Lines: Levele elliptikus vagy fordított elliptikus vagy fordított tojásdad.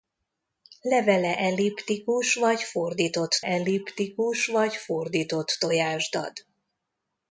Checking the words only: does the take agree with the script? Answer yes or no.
yes